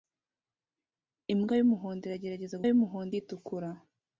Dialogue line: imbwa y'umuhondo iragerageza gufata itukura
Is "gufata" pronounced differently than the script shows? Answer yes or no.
yes